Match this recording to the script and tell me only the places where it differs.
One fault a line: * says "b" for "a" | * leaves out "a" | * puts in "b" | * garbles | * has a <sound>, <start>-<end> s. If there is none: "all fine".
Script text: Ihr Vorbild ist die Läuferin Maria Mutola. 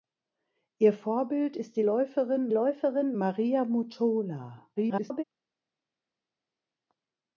* puts in "Läuferin"
* garbles